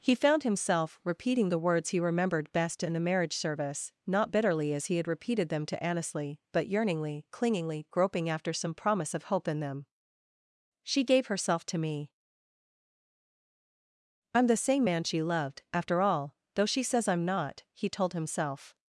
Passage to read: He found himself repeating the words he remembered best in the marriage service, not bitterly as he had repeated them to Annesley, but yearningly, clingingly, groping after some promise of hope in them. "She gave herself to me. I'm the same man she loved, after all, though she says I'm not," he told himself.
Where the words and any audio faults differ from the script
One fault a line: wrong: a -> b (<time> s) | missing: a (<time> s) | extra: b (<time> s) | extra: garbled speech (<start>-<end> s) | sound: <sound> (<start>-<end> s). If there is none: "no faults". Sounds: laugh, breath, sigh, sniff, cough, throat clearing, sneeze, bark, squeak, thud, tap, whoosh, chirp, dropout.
no faults